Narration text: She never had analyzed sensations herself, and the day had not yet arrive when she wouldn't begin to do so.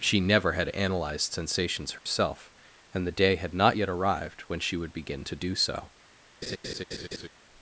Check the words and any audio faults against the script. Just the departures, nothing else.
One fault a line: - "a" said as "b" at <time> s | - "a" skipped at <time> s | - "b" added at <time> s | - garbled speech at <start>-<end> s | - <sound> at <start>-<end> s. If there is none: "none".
- dropout at 2.0-2.1 s
- "arrive" said as "arrived" at 3.9 s
- "wouldn't" said as "would" at 4.8 s
- laugh at 6.4-7.3 s